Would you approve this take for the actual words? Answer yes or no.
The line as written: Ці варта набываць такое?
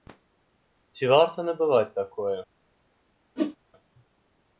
yes